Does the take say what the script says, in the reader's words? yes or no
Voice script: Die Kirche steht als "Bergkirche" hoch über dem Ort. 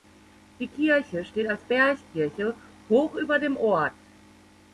yes